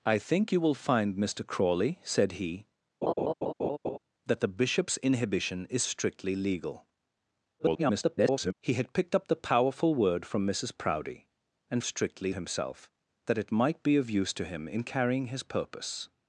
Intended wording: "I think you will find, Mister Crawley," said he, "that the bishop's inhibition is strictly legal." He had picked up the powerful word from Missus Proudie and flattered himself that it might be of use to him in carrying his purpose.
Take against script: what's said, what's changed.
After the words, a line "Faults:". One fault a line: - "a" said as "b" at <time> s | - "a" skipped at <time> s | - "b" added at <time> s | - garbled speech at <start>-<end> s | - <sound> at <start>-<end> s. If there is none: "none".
"I think you will find, Mister Crawley," said he, "that the bishop's inhibition is strictly legal." [garbled] He had picked up the powerful word from Missus Proudie and strictly himself that it might be of use to him in carrying his purpose.
Faults:
- laugh at 3.0-4.0 s
- garbled speech at 7.6-8.5 s
- "flattered" said as "strictly" at 11.8 s